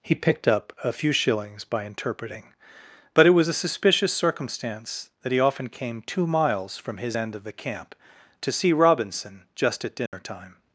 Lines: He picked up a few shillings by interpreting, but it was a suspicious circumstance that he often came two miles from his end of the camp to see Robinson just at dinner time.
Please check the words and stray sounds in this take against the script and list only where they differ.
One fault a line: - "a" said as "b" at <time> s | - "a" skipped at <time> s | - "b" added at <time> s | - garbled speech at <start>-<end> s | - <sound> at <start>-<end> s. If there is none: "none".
- dropout at 10.1-10.1 s